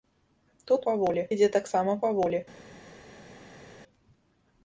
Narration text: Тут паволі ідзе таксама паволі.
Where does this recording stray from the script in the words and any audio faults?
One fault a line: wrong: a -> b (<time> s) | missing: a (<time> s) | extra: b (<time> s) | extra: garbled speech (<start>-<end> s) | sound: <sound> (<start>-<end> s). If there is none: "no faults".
no faults